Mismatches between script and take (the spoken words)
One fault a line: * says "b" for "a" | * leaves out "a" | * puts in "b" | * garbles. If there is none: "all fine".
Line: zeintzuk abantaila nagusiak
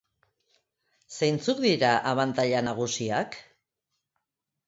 * puts in "dira"